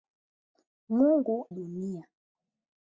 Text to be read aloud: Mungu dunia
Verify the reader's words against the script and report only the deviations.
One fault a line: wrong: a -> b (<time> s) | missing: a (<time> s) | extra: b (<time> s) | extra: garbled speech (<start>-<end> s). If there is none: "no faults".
no faults